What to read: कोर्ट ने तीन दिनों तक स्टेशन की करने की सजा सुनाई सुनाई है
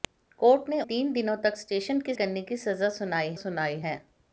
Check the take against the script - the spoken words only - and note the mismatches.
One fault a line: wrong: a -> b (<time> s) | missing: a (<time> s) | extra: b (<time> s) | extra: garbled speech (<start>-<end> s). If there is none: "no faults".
no faults